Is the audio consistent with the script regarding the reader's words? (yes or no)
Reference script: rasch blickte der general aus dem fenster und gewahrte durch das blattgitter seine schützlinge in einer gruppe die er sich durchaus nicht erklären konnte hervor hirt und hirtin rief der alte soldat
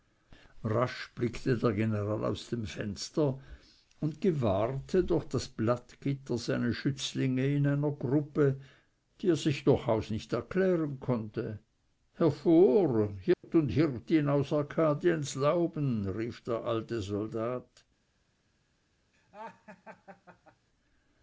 no